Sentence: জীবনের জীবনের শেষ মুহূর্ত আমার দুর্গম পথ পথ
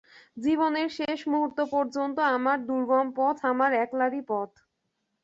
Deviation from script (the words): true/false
true